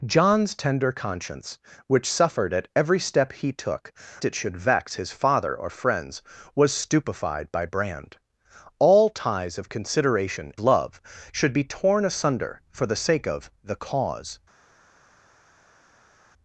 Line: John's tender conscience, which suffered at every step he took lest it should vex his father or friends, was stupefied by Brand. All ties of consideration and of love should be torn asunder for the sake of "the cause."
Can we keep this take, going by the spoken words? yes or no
no